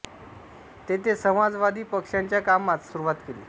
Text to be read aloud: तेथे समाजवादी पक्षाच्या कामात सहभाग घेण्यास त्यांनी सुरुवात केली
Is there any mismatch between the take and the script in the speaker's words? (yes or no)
yes